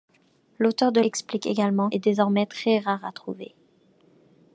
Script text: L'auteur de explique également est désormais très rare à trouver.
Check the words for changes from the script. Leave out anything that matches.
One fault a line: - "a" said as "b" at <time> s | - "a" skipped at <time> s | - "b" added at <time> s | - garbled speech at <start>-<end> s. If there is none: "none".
none